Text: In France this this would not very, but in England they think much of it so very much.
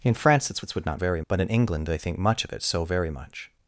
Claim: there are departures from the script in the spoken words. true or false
false